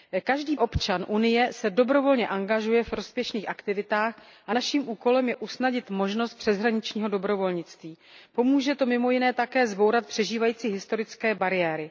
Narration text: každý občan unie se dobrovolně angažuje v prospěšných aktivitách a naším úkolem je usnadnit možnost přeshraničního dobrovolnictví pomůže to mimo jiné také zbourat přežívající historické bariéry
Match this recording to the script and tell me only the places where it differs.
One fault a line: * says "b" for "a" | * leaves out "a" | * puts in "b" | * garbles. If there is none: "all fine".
all fine